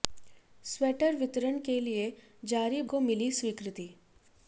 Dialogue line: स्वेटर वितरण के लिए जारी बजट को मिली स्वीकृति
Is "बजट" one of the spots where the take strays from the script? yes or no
yes